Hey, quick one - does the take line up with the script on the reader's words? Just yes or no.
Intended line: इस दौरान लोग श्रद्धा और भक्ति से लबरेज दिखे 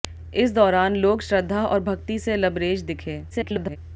no